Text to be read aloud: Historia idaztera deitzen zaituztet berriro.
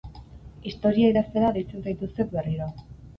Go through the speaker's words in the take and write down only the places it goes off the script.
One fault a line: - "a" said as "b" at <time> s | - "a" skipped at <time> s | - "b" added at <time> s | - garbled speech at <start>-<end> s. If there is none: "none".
none